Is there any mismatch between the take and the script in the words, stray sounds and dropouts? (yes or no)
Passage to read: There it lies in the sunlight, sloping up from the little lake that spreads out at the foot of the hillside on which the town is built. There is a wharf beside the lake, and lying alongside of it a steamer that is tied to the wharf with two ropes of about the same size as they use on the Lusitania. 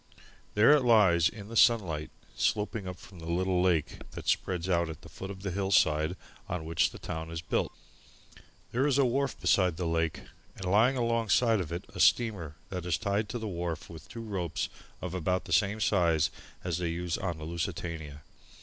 no